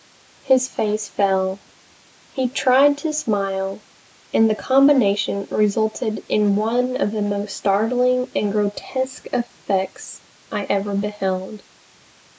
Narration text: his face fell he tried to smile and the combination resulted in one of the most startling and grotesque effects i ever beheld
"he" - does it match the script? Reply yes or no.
yes